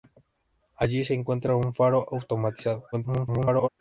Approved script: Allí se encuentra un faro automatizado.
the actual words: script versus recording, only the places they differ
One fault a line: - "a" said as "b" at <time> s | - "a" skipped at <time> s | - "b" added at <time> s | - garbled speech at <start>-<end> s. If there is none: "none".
- garbled speech at 2.9-3.7 s